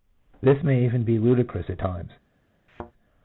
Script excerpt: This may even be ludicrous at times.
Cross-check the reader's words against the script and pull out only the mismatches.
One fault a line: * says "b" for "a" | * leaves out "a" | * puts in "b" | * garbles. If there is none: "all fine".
all fine